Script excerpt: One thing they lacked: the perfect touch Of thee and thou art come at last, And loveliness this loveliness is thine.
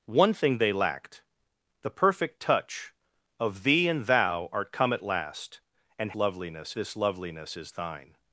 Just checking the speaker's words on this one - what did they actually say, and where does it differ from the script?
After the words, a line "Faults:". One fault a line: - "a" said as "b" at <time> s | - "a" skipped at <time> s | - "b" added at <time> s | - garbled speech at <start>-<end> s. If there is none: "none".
One thing they lacked: the perfect touch Of thee and thou art come at last, And loveliness this loveliness is thine.
Faults:
none